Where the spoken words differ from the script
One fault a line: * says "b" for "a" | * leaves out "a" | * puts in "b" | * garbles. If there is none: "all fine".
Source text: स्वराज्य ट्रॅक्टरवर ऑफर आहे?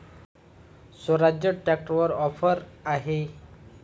all fine